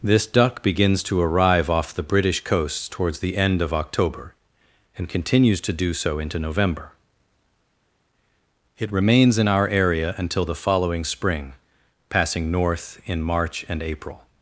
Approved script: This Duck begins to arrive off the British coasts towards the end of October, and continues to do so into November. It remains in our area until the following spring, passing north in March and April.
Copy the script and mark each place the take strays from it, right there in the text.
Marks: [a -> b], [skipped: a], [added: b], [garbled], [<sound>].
This Duck begins to arrive off the British coasts towards the end of October, and continues to do so into November. It remains in our area until the following spring, passing north in March and April.